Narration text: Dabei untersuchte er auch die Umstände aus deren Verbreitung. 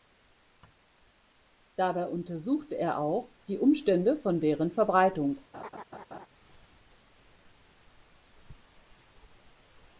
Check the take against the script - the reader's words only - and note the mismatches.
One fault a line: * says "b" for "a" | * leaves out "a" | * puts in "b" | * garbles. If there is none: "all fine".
* says "von" for "aus"